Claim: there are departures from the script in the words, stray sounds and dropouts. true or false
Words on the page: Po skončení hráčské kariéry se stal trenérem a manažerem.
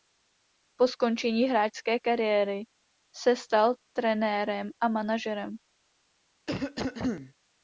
true